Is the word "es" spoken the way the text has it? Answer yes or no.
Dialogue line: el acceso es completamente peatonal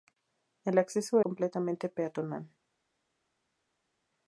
no